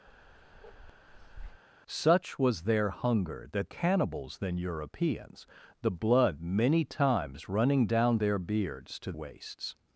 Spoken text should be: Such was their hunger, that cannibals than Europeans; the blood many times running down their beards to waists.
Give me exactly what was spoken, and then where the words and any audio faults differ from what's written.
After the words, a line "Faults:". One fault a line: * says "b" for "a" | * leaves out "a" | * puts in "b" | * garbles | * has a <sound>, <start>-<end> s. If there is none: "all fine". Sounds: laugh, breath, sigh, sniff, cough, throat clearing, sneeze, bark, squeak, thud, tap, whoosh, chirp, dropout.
Such was their hunger, that cannibals than Europeans; the blood many times running down their beards to waists.
Faults:
* has a bark, 0.1-1.6 s